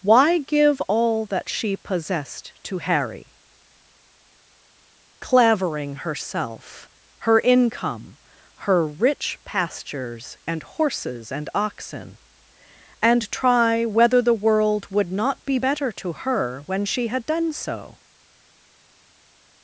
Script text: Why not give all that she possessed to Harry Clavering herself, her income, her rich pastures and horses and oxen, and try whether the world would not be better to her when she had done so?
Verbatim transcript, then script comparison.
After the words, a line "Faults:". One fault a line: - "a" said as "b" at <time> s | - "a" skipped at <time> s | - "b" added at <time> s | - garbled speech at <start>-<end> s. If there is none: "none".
Why give all that she possessed to Harry Clavering herself, her income, her rich pastures and horses and oxen, and try whether the world would not be better to her when she had done so?
Faults:
- "not" skipped at 0.4 s